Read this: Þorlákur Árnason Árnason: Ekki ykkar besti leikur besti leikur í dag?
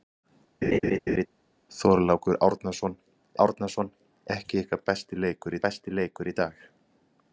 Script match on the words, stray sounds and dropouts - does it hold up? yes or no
no